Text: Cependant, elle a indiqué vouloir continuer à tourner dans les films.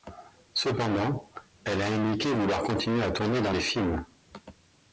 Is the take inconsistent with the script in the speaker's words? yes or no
no